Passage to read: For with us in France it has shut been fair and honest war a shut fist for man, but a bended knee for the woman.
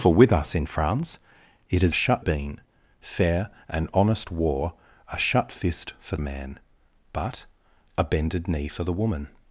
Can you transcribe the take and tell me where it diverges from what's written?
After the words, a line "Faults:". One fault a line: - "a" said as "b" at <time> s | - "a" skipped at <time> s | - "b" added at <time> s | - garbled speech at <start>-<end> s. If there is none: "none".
For with us in France it has shut been fair and honest war a shut fist for man, but a bended knee for the woman.
Faults:
none